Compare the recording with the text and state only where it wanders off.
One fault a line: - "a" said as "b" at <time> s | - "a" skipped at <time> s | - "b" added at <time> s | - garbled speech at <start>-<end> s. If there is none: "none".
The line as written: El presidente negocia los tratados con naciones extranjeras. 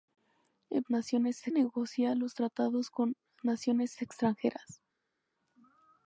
- "presidente" said as "naciones" at 0.9 s